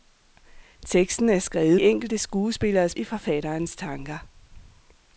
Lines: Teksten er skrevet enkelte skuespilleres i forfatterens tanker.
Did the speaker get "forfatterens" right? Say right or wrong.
right